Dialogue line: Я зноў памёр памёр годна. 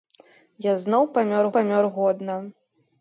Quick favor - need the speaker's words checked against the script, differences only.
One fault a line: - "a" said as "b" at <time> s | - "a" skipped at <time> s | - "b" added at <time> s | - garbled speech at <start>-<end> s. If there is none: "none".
none